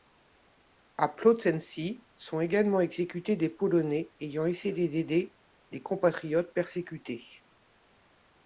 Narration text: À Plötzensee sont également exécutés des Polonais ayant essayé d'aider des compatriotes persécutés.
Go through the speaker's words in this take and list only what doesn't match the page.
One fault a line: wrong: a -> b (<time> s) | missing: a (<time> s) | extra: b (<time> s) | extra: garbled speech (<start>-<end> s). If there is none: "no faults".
no faults